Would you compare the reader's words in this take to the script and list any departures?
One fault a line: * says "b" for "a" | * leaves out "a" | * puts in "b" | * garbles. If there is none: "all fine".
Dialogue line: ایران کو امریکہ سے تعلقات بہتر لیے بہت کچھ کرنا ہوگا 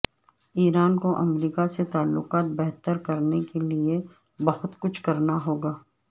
* puts in "کرنے کے"